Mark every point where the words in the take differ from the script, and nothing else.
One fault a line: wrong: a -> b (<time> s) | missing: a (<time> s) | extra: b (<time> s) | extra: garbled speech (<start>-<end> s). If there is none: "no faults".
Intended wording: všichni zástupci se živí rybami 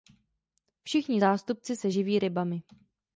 no faults